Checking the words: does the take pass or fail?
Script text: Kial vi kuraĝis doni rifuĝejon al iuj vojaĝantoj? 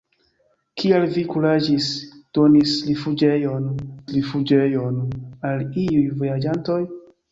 fail